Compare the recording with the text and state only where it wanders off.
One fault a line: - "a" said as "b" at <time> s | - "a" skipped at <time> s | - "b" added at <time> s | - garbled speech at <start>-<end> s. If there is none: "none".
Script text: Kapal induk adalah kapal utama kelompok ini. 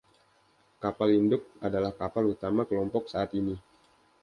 - "saat" added at 3.1 s